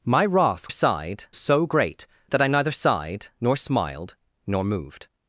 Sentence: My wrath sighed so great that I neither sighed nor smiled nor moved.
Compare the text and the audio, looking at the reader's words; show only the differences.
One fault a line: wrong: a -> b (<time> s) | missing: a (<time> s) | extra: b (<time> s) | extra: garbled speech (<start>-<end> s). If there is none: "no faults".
no faults